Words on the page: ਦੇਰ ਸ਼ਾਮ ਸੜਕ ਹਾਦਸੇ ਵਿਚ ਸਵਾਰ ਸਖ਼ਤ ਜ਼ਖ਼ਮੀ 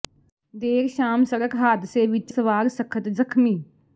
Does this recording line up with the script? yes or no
yes